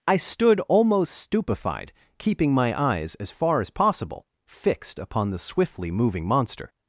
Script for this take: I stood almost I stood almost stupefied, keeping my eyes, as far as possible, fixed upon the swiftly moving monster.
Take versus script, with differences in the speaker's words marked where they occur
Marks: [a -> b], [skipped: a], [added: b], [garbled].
I stood almost [skipped: I stood almost] stupefied, keeping my eyes, as far as possible, fixed upon the swiftly moving monster.